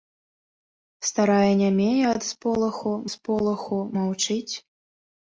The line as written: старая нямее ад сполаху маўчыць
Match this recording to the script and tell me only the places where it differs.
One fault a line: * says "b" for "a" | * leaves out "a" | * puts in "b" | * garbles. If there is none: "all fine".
* puts in "сполаху"